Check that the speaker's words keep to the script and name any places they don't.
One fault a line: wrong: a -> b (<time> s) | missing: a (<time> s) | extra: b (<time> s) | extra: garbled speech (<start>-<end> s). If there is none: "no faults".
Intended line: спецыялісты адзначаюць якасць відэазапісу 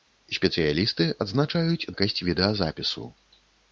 no faults